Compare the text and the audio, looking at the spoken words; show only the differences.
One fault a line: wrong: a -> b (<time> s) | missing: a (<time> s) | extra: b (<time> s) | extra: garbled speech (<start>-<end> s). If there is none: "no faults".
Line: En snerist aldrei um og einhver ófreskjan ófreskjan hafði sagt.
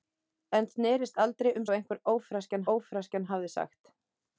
no faults